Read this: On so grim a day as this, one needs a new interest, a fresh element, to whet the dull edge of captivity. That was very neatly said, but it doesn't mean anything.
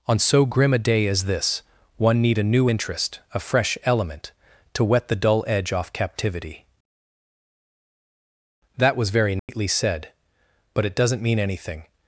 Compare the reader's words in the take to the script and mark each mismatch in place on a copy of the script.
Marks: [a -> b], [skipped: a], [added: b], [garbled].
On so grim a day as this, one [needs -> need] a new interest, a fresh element, to whet the dull edge [of -> off] captivity. That was very neatly said, but it doesn't mean anything.